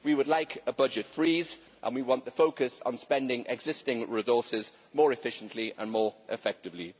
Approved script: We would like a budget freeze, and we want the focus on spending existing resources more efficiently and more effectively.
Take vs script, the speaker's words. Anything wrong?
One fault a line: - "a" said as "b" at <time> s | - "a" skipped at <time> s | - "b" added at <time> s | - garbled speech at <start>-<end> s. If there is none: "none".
none